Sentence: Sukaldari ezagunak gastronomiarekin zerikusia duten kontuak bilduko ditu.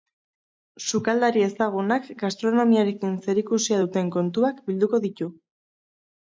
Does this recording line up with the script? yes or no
yes